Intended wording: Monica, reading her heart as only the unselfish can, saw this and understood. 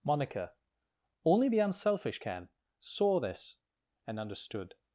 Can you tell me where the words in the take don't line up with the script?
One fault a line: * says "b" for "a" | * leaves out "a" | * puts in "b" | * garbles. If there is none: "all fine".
* leaves out "reading her heart as"